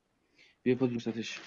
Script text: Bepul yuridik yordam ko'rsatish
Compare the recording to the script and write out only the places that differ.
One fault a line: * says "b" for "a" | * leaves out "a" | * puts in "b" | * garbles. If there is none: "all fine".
* leaves out "yuridik yordam"